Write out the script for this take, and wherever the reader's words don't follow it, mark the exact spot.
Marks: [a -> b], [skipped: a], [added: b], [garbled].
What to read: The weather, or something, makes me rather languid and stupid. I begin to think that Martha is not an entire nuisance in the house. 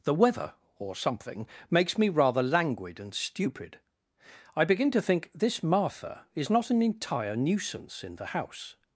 The weather, or something, makes me rather languid and stupid. I begin to think [that -> this] Martha is not an entire nuisance in the house.